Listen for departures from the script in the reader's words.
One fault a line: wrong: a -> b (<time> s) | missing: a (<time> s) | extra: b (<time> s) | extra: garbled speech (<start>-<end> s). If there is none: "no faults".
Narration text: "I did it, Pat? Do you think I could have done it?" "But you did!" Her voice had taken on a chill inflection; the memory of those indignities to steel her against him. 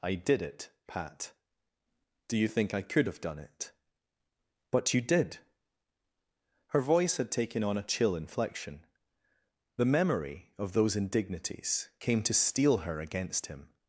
extra: came (12.0 s)